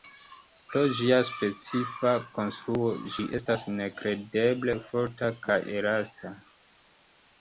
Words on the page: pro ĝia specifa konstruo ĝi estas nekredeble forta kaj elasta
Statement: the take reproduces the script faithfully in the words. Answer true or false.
true